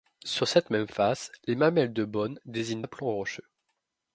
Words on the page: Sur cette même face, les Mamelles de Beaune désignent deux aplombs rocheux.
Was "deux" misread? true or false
true